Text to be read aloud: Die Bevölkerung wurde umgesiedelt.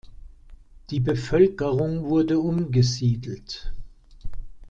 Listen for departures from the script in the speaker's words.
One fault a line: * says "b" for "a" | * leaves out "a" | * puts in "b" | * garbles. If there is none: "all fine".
all fine